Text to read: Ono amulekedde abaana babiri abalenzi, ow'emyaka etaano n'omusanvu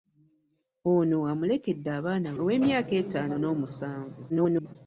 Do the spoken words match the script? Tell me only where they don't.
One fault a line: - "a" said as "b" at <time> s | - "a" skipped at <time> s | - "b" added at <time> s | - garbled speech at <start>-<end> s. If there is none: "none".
- "babiri abalenzi" skipped at 2.3 s
- garbled speech at 4.3-4.8 s